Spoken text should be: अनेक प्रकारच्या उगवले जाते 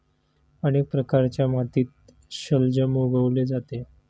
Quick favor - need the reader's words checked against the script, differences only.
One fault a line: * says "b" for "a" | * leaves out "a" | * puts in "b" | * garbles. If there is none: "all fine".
* puts in "मातीत शलजम"